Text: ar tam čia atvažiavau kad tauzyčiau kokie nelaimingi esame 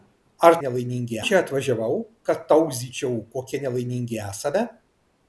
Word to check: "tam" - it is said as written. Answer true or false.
false